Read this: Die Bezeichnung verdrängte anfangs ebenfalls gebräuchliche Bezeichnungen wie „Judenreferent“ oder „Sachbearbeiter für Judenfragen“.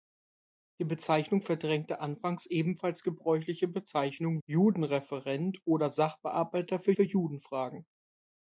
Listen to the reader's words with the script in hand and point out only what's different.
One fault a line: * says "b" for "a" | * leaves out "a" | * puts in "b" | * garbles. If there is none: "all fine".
* leaves out "wie"
* puts in "für"